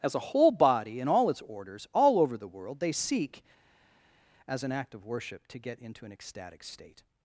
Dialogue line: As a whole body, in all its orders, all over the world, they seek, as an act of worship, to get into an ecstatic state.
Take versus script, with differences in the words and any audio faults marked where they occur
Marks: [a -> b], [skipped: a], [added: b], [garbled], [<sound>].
As a whole body, in all its orders, all over the world, they seek, as an act of worship, to get into an ecstatic state.